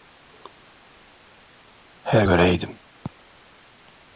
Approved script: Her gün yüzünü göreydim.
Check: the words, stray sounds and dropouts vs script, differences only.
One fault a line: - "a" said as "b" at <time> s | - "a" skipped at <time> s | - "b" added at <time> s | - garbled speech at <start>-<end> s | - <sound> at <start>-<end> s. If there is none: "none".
- "gün yüzünü" skipped at 2.3 s